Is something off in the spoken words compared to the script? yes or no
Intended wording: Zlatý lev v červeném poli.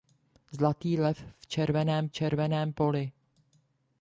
yes